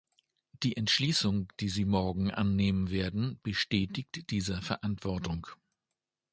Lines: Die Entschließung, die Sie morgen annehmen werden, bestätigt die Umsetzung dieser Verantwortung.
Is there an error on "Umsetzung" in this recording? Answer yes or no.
yes